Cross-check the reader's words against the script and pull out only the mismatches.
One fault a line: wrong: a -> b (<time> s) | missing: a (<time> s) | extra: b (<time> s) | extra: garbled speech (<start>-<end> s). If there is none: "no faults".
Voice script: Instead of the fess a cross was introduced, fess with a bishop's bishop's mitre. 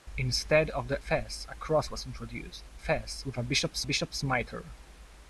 no faults